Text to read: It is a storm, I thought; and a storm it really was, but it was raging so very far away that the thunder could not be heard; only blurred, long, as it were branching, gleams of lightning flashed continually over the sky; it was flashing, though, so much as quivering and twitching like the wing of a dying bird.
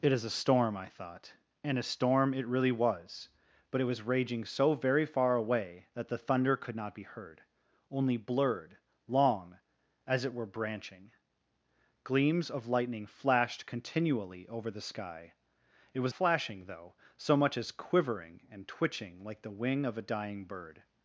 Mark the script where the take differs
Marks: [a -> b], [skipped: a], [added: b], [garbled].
It is a storm, I thought; and a storm it really was, but it was raging so very far away that the thunder could not be heard; only blurred, long, as it were branching, gleams of lightning flashed continually over the sky; it was flashing, though, so much as quivering and twitching like the wing of a dying bird.